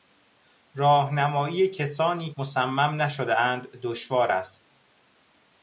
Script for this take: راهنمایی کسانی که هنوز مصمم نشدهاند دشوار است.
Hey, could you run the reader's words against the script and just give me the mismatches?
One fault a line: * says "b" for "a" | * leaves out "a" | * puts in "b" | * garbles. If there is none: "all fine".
* leaves out "که هنوز"